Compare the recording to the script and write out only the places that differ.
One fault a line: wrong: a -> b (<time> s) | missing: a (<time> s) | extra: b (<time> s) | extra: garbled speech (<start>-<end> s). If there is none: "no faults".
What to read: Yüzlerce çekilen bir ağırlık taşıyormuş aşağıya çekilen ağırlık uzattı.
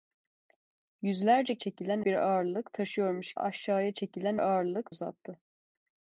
no faults